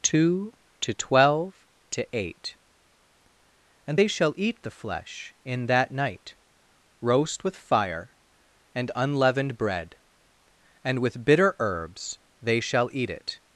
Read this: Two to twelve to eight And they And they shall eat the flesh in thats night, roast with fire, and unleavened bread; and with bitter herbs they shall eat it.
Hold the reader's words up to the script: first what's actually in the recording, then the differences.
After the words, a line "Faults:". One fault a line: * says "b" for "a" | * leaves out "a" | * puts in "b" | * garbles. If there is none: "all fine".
Two to twelve to eight And they shall eat the flesh in that night, roast with fire, and unleavened bread; and with bitter herbs they shall eat it.
Faults:
* leaves out "And they"
* says "that" for "thats"